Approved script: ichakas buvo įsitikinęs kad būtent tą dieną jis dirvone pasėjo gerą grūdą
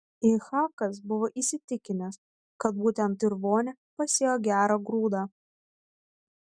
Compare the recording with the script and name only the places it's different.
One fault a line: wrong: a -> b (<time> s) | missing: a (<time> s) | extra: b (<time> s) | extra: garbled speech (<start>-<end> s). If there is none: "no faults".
missing: tą dieną jis (3.2 s)